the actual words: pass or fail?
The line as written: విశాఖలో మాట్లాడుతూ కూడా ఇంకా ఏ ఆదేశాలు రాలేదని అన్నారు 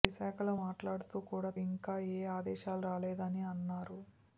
pass